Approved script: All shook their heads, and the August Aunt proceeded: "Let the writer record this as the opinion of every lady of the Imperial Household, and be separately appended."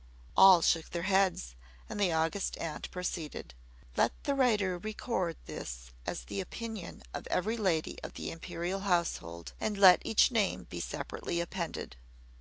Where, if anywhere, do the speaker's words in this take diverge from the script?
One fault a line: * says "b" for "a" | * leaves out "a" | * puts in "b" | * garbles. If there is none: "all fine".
* puts in "let each name"